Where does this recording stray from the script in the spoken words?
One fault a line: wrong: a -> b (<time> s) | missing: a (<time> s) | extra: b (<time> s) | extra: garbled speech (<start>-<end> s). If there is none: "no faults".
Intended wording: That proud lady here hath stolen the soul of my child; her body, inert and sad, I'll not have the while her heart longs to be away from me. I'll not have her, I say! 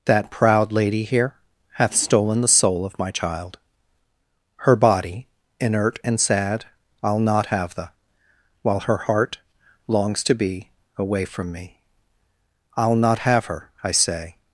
no faults